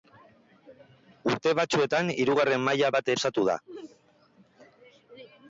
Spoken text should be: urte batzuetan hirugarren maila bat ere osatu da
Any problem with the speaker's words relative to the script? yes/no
yes